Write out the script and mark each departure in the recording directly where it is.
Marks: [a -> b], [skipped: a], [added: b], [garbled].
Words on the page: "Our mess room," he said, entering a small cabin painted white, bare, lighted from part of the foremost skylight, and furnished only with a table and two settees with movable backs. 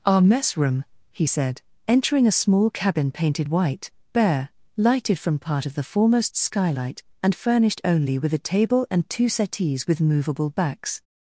"Our mess room," he said, entering a small cabin painted white, bare, lighted from part of the foremost skylight, and furnished only with a table and two settees with movable backs.